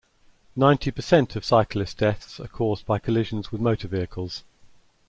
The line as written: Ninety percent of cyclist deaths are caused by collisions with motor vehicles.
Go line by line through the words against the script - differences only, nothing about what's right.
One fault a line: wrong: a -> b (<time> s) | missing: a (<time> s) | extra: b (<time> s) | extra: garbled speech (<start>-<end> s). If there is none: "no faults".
no faults